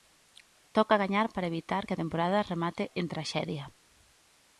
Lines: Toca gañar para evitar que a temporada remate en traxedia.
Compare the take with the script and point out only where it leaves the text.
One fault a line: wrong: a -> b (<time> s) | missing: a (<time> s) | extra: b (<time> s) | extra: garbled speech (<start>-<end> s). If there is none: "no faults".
no faults